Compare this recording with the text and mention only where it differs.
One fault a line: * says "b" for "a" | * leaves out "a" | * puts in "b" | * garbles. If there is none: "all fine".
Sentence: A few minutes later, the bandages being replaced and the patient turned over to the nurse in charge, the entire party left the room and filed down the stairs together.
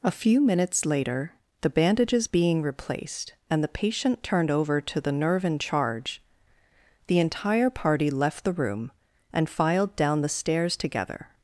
* says "nerve" for "nurse"